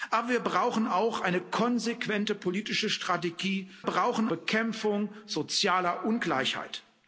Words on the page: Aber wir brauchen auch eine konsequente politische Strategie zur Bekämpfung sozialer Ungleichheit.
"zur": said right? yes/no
no